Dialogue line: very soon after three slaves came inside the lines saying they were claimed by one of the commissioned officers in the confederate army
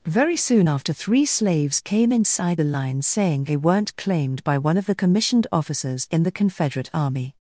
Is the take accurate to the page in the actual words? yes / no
no